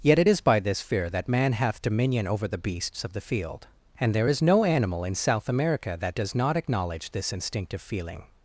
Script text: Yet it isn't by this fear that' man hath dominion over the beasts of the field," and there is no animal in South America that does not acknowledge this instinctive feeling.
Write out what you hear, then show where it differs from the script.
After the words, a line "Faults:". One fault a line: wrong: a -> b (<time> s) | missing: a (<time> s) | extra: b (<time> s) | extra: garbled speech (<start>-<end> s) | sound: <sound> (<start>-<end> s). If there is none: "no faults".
Yet it is by this fear that' man hath dominion over the beasts of the field," and there is no animal in South America that does not acknowledge this instinctive feeling.
Faults:
wrong: isn't -> is (0.3 s)